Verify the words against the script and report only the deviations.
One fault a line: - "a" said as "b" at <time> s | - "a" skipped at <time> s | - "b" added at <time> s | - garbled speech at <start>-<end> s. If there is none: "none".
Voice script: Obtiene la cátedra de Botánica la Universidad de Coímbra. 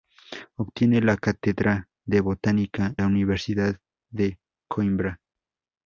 none